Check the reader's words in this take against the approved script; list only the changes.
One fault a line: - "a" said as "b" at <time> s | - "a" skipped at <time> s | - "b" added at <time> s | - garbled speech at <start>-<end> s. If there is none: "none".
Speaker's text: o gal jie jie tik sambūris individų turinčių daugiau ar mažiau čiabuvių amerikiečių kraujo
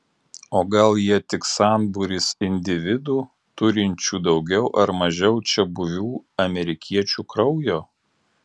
- "jie" skipped at 1.2 s